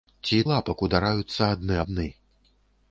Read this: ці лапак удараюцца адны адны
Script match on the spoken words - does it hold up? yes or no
yes